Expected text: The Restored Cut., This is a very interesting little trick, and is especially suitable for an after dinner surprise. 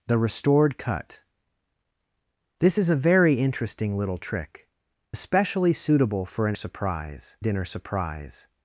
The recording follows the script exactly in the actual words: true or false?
false